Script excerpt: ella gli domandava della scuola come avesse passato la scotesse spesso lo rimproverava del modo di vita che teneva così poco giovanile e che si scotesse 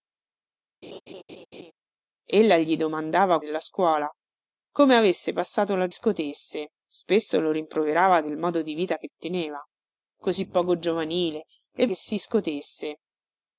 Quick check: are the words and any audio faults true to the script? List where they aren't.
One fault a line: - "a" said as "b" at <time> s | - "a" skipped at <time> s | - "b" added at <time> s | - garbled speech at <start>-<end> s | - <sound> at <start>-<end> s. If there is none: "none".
- laugh at 0.8-1.7 s